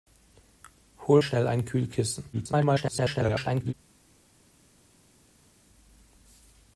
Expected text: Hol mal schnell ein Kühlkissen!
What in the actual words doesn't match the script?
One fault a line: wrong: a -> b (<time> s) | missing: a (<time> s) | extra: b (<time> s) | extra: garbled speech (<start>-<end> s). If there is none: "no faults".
missing: mal (1.2 s)
extra: garbled speech (2.3-3.7 s)